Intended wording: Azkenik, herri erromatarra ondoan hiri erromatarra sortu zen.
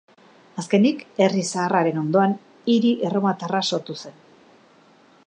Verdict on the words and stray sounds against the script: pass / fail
fail